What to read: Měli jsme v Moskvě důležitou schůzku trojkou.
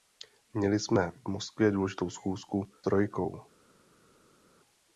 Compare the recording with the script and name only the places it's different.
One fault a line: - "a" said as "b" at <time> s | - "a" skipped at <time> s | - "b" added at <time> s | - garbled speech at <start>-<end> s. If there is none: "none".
none